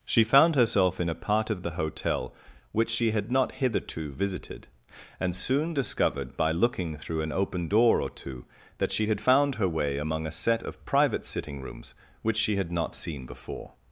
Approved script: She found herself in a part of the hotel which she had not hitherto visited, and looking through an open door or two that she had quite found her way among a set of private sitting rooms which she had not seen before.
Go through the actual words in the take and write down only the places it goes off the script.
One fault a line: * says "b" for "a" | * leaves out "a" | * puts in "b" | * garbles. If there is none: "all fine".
* puts in "soon discovered by"
* leaves out "quite"